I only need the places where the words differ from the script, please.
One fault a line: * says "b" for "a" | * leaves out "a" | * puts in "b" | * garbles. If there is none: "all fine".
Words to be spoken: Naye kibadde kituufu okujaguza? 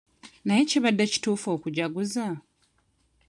all fine